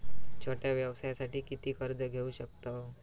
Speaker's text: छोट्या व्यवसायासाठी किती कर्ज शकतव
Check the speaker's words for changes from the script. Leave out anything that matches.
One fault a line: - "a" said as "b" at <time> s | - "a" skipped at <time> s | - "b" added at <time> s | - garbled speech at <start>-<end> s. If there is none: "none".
- "घेऊ" added at 2.0 s